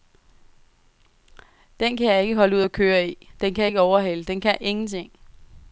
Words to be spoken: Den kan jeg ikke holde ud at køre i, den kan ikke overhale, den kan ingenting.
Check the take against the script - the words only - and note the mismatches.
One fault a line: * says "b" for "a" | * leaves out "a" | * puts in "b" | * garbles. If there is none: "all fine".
all fine